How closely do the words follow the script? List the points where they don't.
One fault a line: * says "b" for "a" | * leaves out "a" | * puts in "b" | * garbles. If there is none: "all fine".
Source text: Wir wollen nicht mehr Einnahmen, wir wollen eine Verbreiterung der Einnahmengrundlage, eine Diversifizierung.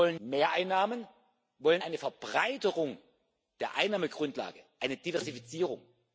* leaves out "nicht"